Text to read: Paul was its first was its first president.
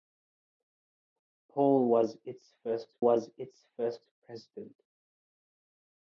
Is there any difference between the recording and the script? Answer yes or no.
no